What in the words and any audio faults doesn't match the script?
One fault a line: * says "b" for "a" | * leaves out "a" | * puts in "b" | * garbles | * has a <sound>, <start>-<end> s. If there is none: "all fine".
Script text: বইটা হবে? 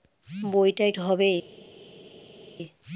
all fine